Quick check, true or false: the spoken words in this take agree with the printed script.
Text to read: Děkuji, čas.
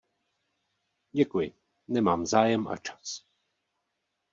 false